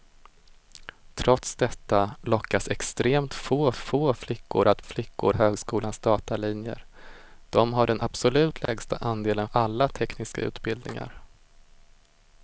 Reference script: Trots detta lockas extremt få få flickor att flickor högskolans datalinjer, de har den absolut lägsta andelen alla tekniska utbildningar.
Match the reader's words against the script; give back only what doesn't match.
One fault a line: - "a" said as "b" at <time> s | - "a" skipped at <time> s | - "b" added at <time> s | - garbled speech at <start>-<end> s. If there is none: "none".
none